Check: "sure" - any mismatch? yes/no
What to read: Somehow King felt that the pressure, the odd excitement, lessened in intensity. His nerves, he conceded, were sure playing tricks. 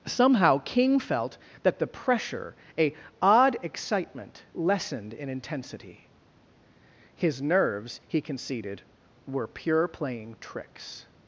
yes